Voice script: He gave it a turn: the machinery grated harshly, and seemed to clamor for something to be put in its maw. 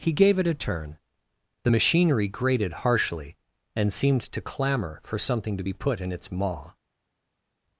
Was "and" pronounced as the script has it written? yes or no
yes